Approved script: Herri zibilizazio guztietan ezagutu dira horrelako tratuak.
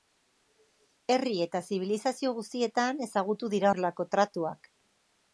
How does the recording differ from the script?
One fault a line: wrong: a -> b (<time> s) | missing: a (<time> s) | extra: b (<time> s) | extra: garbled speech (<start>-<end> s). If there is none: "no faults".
extra: eta (1.4 s)